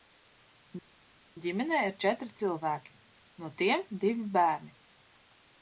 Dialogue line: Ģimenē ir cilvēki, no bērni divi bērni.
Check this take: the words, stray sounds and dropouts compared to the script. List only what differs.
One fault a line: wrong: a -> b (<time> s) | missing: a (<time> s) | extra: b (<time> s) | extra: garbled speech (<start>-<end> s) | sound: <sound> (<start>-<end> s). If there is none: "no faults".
extra: četri (2.0 s)
wrong: bērni -> tiem (3.6 s)